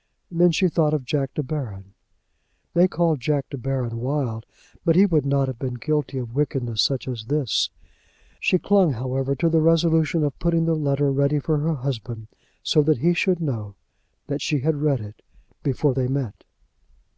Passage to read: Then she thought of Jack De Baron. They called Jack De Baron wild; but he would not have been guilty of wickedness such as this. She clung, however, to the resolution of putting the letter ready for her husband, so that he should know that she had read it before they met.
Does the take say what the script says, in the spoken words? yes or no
yes